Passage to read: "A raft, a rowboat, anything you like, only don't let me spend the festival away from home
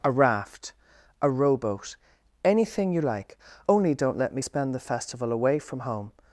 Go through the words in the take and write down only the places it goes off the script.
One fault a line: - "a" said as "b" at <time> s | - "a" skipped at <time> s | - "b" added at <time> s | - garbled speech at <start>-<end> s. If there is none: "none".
none